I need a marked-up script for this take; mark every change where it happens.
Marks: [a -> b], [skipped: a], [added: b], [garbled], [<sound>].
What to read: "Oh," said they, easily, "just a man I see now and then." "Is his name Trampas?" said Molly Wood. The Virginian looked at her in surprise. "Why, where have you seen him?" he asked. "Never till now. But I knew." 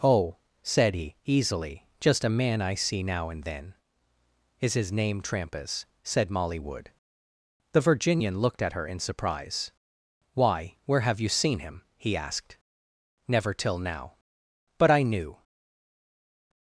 "Oh," said [they, -> he] easily, "just a man I see now and then." "Is his name Trampas?" said Molly Wood. The Virginian looked at her in surprise. "Why, where have you seen him?" he asked. "Never till now. But I knew."